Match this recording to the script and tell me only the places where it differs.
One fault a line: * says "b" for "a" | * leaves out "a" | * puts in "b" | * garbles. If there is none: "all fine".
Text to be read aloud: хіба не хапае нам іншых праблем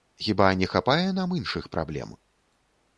all fine